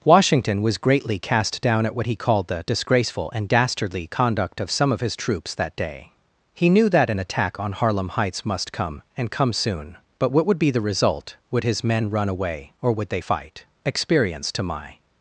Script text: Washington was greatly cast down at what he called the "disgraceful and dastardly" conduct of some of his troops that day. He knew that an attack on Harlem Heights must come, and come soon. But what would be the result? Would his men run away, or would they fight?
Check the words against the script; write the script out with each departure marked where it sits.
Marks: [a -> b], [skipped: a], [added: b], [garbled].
Washington was greatly cast down at what he called the "disgraceful and dastardly" conduct of some of his troops that day. He knew that an attack on Harlem Heights must come, and come soon. But what would be the result? Would his men run away, or would they fight? [added: Experience to my]